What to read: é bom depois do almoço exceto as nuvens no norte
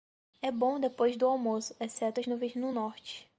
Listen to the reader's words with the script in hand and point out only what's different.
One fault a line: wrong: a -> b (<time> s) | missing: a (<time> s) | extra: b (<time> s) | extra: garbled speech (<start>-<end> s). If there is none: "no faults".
no faults